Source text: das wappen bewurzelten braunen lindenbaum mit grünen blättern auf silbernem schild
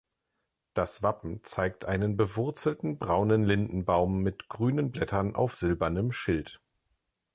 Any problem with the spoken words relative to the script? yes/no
yes